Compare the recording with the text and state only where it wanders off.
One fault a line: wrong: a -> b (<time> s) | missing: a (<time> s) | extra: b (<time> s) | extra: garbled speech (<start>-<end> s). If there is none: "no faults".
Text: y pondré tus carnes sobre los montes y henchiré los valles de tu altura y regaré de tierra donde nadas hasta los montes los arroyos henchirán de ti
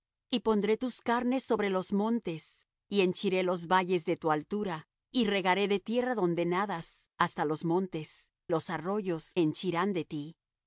no faults